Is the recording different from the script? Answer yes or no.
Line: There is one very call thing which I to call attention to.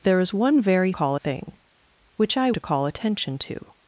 no